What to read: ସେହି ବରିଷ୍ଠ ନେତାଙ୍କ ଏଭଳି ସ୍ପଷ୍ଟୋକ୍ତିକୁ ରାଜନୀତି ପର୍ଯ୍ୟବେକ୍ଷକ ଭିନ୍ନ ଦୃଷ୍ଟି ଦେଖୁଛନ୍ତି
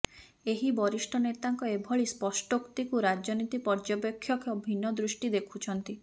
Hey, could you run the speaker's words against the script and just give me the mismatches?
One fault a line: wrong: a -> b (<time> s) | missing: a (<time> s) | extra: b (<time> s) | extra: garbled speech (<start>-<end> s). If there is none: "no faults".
wrong: ସେହି -> ଏହି (0.5 s)